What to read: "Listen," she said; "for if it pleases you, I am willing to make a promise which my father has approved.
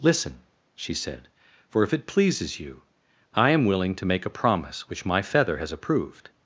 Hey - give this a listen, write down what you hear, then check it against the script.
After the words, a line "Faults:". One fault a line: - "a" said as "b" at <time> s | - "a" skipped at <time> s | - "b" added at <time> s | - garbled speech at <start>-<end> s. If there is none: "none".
"Listen," she said; "for if it pleases you, I am willing to make a promise which my feather has approved.
Faults:
- "father" said as "feather" at 5.2 s